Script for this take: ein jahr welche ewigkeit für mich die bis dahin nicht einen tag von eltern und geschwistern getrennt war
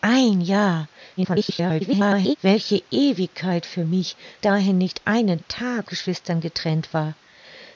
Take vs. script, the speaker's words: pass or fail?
fail